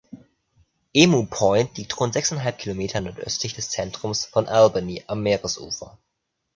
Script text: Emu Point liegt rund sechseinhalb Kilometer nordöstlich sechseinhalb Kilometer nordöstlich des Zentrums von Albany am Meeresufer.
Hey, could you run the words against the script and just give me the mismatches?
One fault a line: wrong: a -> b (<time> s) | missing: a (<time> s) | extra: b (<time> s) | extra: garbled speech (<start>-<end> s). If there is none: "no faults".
missing: sechseinhalb Kilometer nordöstlich (3.5 s)